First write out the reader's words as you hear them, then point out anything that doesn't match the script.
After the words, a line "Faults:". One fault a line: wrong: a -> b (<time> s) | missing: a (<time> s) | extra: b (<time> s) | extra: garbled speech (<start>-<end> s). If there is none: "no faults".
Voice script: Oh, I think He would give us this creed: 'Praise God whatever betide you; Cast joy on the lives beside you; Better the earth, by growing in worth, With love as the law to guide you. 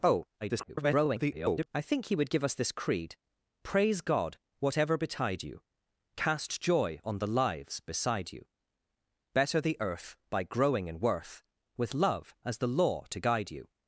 Oh, [garbled] I think He would give us this creed: 'Praise God whatever betide you; Cast joy on the lives beside you; Better the earth, by growing in worth, With love as the law to guide you.
Faults:
extra: garbled speech (0.4-1.7 s)